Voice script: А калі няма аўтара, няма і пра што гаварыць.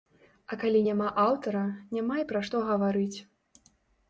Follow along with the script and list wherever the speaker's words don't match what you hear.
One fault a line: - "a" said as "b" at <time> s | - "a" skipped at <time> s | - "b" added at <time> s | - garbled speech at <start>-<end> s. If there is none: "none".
none